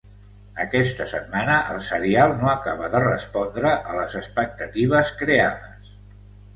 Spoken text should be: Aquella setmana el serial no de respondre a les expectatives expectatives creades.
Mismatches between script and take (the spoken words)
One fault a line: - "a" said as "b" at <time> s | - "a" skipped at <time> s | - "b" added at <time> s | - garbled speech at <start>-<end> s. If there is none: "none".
- "Aquella" said as "Aquesta" at 0.6 s
- "acaba" added at 2.5 s
- "expectatives" skipped at 5.2 s